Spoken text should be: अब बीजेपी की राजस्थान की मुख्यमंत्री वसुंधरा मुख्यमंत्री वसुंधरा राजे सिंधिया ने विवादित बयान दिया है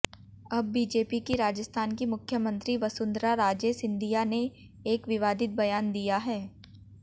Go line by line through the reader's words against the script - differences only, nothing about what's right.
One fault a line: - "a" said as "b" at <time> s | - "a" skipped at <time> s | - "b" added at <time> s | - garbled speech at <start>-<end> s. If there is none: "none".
- "मुख्यमंत्री वसुंधरा" skipped at 3.3 s
- "एक" added at 4.9 s